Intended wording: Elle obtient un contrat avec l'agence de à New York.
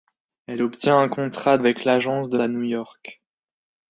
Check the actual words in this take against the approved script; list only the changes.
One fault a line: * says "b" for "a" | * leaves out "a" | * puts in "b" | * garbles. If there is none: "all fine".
all fine